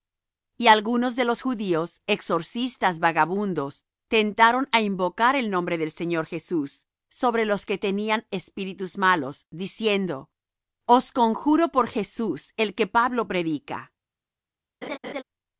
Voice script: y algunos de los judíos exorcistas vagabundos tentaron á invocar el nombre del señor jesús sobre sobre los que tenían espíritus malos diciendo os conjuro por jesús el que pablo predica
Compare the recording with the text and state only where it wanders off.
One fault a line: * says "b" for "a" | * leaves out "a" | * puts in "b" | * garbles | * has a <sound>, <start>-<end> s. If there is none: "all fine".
* leaves out "sobre"
* has a laugh, 14.8-15.2 s